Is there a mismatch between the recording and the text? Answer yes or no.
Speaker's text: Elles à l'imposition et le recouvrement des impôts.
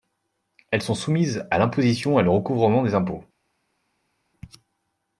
yes